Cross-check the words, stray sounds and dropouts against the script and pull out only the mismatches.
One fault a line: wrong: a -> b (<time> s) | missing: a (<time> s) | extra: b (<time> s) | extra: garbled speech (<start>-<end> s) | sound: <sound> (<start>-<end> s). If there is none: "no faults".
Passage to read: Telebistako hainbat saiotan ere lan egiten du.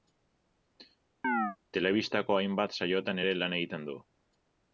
sound: chirp (1.2-1.6 s)